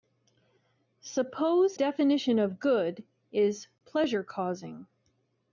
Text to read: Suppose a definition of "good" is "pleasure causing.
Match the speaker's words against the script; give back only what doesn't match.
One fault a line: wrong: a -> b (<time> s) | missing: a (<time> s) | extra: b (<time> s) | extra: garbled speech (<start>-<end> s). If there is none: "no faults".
missing: a (1.8 s)